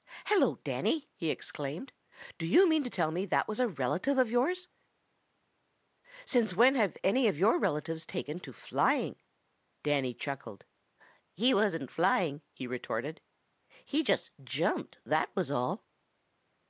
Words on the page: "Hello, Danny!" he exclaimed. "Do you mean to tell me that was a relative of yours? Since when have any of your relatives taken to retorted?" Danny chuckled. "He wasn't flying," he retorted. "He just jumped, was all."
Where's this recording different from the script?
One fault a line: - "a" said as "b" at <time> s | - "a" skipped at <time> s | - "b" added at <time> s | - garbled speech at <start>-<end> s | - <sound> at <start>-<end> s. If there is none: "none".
- "retorted" said as "flying" at 8.5 s
- "that" added at 15.1 s